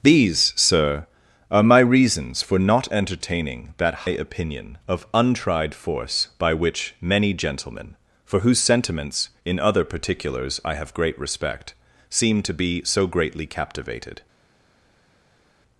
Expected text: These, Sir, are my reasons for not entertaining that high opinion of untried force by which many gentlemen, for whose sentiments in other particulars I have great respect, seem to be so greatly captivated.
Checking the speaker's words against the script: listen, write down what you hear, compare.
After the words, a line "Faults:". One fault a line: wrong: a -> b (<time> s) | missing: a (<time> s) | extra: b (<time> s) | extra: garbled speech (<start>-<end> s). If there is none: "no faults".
These, Sir, are my reasons for not entertaining that opinion of untried force by which many gentlemen, for whose sentiments in other particulars I have great respect, seem to be so greatly captivated.
Faults:
missing: high (4.1 s)